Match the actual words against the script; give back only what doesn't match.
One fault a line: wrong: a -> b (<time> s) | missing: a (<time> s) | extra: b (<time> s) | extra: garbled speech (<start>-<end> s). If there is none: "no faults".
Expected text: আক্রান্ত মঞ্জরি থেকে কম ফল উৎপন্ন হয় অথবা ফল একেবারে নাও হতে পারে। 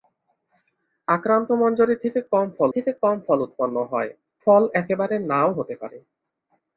extra: থেকে কম ফল (2.7 s)
missing: অথবা (4.1 s)